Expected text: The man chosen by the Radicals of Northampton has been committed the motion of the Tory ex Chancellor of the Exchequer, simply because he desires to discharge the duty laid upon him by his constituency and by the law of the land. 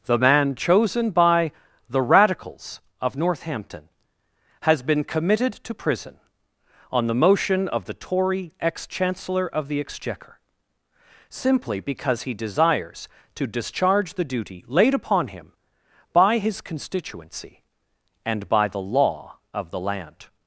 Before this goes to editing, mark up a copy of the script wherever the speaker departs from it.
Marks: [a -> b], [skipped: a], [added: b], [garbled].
The man chosen by the Radicals of Northampton has been committed [added: to prison on] the motion of the Tory ex Chancellor of the Exchequer, simply because he desires to discharge the duty laid upon him by his constituency and by the law of the land.